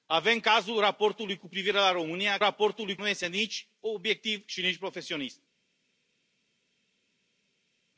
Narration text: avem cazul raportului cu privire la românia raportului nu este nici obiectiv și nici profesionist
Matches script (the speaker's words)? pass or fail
pass